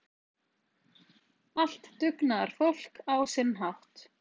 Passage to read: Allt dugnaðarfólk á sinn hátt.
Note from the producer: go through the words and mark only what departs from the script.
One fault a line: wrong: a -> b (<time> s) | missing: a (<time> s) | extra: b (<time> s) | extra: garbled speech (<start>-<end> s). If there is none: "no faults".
no faults